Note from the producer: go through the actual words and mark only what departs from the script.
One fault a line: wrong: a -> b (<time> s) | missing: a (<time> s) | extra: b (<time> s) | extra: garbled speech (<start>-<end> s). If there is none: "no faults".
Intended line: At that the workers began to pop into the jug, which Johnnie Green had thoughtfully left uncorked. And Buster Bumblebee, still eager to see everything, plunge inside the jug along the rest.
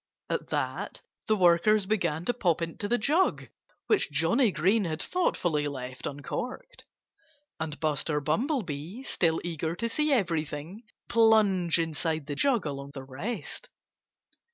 no faults